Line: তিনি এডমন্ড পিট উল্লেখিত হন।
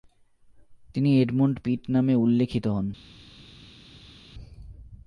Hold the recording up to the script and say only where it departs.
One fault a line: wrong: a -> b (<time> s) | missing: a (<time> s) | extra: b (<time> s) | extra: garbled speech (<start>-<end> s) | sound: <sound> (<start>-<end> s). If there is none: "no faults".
extra: নামে (1.9 s)